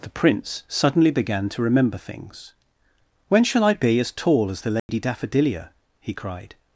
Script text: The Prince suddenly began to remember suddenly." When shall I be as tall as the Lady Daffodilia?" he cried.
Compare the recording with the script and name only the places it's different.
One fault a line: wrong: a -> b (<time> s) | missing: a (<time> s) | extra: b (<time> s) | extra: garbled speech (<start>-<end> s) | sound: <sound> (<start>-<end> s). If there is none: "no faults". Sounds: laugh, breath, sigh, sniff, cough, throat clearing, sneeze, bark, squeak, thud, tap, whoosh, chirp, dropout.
wrong: suddenly -> things (2.0 s)
sound: dropout (4.8-4.9 s)